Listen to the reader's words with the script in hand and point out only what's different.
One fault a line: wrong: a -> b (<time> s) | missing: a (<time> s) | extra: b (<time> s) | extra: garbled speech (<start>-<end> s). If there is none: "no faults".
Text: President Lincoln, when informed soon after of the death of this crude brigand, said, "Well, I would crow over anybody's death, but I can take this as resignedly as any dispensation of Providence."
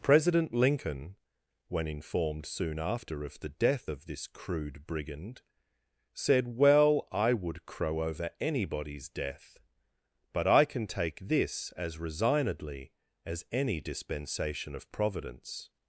no faults